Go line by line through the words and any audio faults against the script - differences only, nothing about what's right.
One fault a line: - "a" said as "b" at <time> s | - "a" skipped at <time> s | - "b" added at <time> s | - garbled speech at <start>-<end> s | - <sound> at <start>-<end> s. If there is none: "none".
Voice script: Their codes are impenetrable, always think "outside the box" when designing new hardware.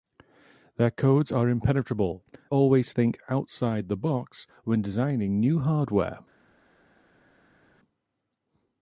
none